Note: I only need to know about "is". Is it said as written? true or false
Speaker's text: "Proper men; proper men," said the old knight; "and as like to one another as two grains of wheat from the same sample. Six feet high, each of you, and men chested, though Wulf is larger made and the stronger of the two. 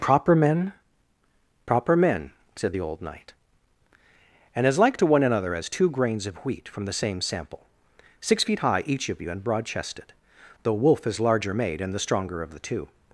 true